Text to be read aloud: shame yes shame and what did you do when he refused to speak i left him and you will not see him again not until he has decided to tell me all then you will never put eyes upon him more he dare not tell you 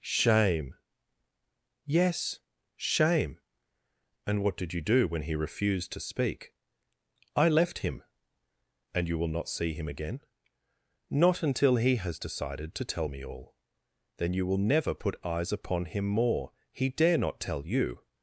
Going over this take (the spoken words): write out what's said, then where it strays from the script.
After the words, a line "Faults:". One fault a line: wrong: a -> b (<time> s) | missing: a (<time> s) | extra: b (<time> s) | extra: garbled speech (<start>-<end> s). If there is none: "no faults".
shame yes shame and what did you do when he refused to speak i left him and you will not see him again not until he has decided to tell me all then you will never put eyes upon him more he dare not tell you
Faults:
no faults